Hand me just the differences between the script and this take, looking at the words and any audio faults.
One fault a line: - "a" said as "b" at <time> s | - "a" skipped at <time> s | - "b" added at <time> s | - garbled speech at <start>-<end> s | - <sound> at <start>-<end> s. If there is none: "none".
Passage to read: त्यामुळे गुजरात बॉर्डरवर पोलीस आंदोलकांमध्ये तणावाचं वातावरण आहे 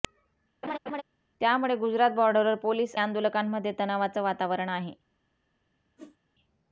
- laugh at 0.6-1.0 s
- whoosh at 6.0-6.2 s